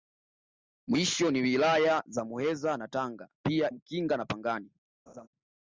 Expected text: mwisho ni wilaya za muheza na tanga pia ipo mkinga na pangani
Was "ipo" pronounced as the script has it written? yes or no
no